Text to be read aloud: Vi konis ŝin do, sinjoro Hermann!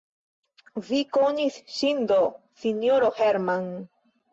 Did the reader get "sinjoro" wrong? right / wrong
right